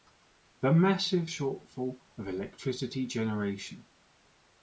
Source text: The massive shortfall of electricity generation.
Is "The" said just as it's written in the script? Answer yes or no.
yes